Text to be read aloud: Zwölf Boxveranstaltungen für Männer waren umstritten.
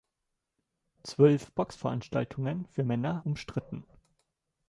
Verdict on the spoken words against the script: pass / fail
fail